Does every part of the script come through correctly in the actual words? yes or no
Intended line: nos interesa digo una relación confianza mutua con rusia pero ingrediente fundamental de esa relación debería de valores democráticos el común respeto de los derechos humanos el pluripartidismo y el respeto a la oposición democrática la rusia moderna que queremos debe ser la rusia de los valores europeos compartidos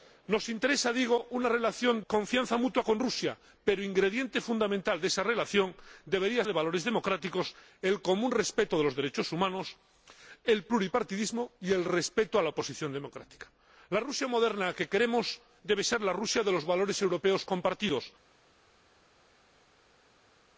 yes